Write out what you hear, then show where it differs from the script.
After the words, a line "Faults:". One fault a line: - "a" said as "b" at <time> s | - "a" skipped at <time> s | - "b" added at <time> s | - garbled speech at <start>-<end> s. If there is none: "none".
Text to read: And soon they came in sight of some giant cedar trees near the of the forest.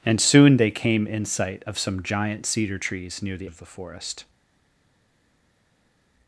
And soon they came in sight of some giant cedar trees near the of the forest.
Faults:
none